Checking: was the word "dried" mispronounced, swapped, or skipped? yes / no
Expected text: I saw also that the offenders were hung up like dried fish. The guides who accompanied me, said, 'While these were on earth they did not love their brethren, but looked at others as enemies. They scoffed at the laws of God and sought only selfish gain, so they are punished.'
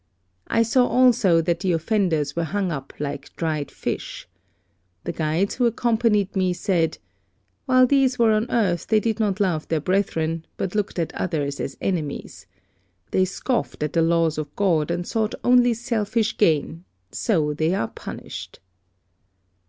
no